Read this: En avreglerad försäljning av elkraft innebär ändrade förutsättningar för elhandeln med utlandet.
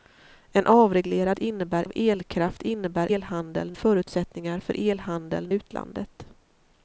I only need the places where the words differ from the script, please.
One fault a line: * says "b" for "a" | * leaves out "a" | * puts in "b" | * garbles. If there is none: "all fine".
* says "innebär" for "försäljning"
* says "elhandeln" for "ändrade"
* leaves out "med"